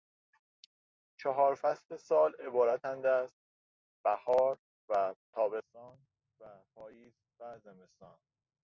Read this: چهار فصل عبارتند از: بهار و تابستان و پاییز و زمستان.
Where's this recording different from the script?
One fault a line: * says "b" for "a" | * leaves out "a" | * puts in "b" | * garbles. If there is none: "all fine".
* puts in "سال"